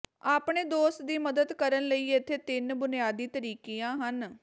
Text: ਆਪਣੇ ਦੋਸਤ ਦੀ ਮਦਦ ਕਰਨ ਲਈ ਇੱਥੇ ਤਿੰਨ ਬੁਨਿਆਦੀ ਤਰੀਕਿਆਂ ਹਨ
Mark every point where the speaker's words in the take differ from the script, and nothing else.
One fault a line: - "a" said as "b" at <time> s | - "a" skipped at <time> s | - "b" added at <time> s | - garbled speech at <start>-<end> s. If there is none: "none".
none